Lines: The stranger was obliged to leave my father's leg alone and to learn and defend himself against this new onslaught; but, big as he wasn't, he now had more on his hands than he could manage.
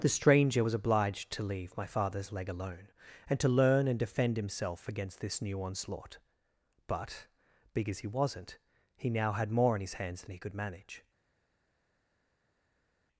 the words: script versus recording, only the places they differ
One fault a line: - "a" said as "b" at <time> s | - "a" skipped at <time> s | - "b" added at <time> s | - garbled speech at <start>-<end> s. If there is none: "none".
none